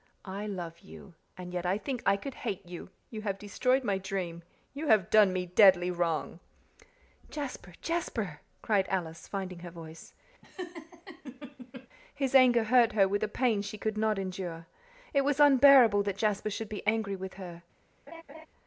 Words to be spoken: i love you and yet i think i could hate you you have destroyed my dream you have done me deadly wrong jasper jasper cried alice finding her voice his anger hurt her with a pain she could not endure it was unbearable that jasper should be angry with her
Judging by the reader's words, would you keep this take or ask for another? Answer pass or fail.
pass